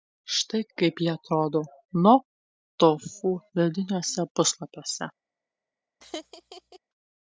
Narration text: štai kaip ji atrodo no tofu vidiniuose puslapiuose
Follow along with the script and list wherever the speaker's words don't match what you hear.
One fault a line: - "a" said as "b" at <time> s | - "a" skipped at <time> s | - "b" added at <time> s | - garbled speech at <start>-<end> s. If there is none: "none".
none